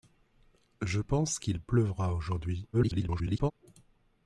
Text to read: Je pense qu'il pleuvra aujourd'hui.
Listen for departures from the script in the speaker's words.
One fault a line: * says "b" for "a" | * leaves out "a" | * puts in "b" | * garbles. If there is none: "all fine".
* garbles